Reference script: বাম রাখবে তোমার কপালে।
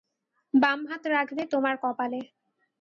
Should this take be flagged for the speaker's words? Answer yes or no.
yes